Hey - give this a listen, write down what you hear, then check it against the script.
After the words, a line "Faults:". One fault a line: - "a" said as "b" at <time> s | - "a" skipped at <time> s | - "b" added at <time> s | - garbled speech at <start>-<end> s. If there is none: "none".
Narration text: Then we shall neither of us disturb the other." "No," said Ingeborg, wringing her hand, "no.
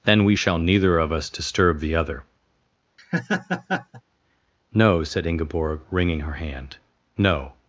Then we shall neither of us disturb the other." "No," said Ingeborg, wringing her hand, "no.
Faults:
none